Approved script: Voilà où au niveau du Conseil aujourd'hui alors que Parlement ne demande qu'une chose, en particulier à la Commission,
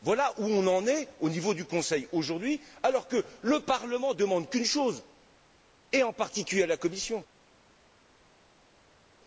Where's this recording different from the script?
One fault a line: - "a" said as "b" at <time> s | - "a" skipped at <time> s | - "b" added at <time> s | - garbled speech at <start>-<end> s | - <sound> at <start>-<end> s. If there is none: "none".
- "on en est" added at 0.5 s
- "le" added at 3.4 s
- "et" added at 5.9 s